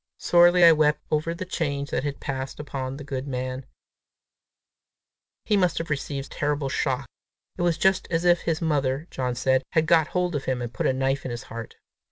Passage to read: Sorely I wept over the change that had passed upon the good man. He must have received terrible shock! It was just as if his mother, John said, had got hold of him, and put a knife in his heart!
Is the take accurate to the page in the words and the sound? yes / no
yes